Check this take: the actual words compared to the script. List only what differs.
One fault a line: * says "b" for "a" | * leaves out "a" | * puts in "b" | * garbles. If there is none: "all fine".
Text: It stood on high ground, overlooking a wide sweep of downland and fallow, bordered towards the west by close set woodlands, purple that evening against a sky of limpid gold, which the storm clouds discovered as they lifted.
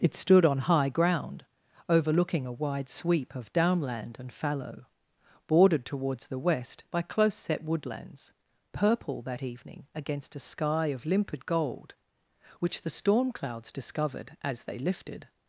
all fine